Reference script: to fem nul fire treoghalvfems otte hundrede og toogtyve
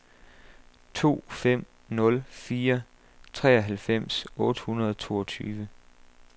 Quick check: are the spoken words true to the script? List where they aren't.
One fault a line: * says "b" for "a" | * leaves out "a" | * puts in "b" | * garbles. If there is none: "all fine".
all fine